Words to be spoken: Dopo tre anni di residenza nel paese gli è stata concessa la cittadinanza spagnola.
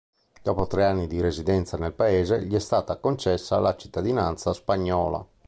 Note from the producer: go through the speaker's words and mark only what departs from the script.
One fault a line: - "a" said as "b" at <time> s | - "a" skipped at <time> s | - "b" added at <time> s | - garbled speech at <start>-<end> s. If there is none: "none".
none